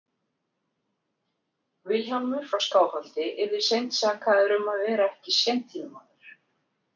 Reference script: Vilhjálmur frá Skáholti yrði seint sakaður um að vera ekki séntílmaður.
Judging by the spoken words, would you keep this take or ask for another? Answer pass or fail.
pass